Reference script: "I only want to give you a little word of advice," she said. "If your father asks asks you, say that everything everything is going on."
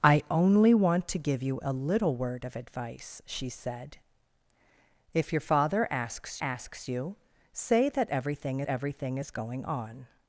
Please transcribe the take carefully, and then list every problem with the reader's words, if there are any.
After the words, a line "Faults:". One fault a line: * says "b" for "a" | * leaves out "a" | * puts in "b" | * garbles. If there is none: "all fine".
"I only want to give you a little word of advice," she said. "If your father asks asks you, say that everything everything is going on."
Faults:
all fine